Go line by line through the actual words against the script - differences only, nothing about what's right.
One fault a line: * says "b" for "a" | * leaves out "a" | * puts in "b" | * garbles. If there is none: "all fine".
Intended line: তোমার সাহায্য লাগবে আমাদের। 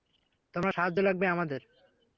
all fine